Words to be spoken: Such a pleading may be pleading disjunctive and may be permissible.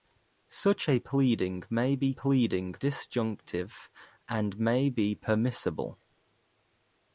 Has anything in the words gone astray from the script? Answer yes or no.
no